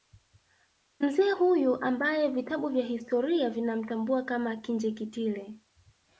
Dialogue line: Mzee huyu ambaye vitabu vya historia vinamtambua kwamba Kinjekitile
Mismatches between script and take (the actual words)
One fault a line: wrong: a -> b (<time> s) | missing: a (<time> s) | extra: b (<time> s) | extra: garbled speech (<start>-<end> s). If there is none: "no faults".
wrong: kwamba -> kama (4.2 s)